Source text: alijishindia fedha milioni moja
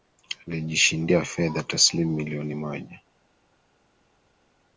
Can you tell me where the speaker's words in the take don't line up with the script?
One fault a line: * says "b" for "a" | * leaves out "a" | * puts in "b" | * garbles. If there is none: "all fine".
* puts in "taslimu"